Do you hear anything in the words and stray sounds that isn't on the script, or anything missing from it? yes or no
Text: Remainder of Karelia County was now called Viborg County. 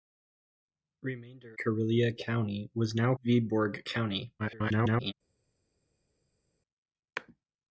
yes